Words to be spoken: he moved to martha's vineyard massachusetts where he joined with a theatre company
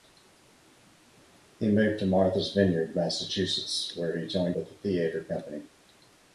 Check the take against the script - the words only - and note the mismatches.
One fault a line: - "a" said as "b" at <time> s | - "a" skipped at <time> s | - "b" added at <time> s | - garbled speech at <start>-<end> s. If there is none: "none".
none